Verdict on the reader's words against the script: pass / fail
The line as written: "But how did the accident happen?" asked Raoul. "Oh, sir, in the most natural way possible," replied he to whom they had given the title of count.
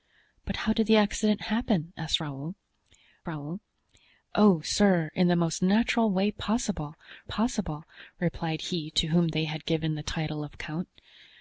fail